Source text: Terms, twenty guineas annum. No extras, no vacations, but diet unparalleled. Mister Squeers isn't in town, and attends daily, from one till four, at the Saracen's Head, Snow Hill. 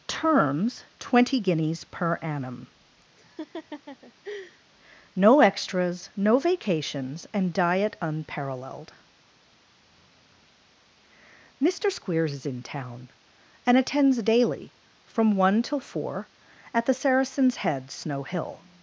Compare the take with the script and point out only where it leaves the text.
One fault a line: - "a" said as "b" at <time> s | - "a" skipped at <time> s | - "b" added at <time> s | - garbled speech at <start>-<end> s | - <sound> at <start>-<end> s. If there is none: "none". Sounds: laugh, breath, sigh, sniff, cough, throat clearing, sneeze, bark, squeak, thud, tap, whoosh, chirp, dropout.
- "per" added at 1.9 s
- laugh at 3.2-4.6 s
- "but" said as "and" at 7.3 s
- "isn't" said as "is" at 12.3 s